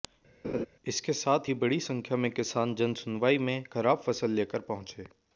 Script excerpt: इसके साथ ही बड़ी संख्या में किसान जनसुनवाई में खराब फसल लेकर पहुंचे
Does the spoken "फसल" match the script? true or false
true